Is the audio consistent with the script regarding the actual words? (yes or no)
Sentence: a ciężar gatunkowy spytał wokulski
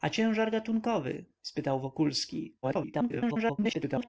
no